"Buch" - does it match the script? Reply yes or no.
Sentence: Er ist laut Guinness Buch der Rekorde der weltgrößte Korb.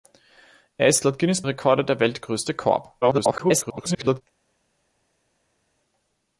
no